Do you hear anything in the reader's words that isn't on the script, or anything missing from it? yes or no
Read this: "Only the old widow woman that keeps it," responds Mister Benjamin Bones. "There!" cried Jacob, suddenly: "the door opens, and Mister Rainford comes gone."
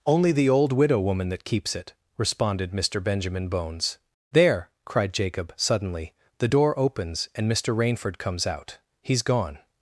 yes